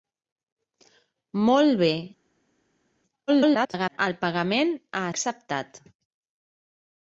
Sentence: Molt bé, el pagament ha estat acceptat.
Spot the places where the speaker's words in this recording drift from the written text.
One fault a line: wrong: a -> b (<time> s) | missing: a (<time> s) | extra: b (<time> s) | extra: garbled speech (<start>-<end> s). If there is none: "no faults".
extra: garbled speech (3.3-4.0 s)
missing: estat (5.1 s)